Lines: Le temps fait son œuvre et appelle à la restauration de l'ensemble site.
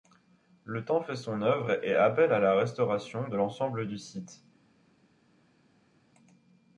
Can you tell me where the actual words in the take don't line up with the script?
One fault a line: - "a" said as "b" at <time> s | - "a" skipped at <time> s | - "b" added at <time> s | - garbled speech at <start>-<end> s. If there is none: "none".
- "du" added at 3.8 s